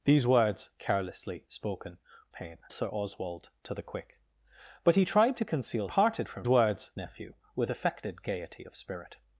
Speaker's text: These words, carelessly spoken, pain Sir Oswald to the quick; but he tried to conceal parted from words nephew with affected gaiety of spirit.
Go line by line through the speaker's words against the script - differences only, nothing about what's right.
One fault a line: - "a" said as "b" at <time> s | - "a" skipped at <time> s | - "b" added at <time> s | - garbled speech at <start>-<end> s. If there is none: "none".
none